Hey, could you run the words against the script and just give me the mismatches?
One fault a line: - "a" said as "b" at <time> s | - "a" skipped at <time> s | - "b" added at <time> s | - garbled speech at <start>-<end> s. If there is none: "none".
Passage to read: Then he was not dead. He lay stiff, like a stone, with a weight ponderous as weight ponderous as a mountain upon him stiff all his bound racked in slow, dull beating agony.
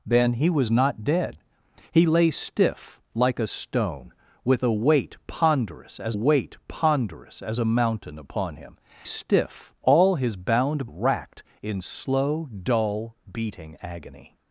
none